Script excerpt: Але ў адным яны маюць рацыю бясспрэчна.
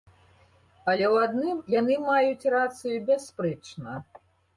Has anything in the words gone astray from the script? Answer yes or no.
no